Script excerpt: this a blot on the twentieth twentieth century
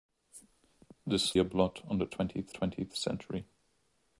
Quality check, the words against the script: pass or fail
pass